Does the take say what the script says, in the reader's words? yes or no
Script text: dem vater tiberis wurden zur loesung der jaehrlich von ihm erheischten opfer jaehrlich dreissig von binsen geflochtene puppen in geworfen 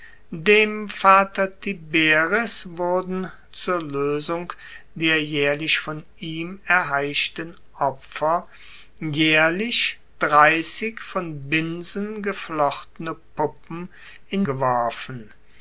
yes